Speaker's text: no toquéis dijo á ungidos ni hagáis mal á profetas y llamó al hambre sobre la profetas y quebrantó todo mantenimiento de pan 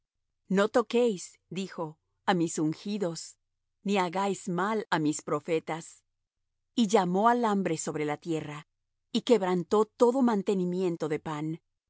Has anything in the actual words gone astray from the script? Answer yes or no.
yes